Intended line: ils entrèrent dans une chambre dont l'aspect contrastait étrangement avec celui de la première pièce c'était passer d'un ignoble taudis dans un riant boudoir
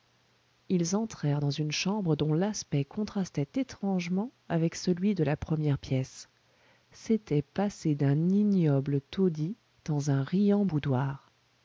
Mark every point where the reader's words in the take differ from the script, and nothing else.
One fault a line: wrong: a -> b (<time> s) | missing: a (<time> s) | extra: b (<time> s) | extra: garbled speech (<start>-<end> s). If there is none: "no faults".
no faults